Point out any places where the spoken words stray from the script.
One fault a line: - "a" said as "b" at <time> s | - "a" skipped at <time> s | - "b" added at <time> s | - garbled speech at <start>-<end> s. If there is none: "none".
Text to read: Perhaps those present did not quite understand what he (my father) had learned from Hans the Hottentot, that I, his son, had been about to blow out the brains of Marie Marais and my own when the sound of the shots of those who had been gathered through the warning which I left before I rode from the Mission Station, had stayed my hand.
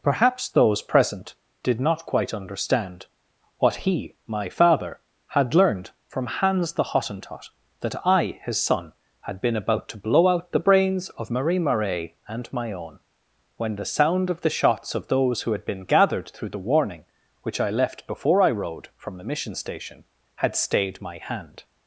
none